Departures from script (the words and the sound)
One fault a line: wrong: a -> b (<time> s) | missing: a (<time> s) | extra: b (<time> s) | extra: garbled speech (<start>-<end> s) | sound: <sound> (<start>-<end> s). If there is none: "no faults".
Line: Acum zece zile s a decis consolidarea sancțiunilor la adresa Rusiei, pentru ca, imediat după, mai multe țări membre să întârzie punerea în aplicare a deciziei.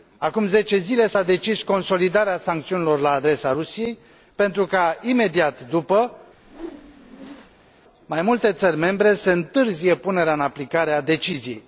sound: whoosh (6.3-7.7 s)